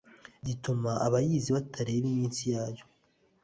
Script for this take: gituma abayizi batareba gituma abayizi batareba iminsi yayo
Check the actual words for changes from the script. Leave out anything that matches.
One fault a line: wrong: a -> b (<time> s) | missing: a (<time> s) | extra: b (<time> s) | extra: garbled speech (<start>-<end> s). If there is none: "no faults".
missing: gituma abayizi batareba (2.1 s)